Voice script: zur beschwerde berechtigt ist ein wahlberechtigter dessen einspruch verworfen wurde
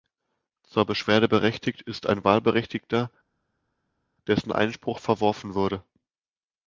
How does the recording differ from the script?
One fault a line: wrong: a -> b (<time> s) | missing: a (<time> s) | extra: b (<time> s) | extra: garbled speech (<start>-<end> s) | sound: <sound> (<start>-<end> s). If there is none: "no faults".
no faults